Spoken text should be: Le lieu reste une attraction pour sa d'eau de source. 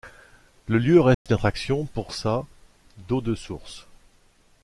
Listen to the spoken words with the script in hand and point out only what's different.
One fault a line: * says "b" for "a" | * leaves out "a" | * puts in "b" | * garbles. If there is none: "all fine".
all fine